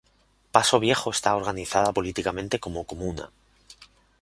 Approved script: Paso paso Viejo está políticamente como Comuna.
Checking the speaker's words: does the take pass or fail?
fail